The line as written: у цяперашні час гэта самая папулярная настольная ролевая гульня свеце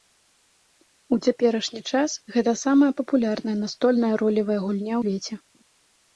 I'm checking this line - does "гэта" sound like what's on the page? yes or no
yes